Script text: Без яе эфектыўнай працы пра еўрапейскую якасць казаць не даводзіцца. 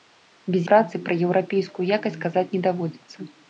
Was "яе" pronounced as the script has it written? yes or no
no